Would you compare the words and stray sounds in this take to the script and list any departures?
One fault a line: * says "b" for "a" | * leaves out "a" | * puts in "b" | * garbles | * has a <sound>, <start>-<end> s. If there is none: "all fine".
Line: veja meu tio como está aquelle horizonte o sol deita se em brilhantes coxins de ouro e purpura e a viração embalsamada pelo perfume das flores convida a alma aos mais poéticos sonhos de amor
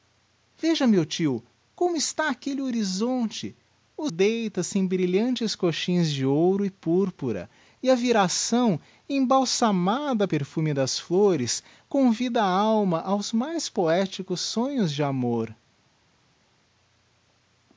* leaves out "sol"
* leaves out "pelo"